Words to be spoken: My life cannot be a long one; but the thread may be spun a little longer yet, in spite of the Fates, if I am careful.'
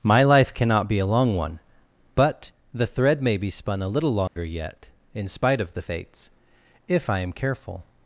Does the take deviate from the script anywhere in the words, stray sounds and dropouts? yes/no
yes